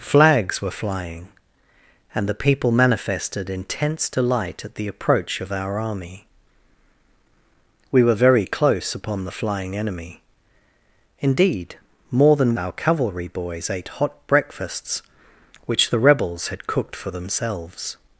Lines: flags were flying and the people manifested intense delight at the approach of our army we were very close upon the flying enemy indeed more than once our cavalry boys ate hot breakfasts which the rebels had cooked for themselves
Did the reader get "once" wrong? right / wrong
wrong